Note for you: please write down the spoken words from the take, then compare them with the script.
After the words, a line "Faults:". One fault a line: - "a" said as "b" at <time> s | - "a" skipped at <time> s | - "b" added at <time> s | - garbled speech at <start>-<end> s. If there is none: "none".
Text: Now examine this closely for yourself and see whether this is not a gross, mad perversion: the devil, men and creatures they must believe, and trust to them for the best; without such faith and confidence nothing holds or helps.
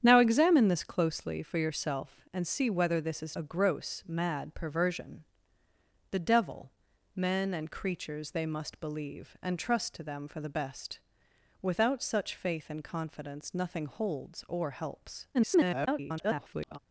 Now examine this closely for yourself and see whether this is a gross, mad perversion: the devil, men and creatures they must believe, and trust to them for the best; without such faith and confidence nothing holds or helps. [garbled]
Faults:
- "not" skipped at 3.4 s
- garbled speech at 15.3-16.8 s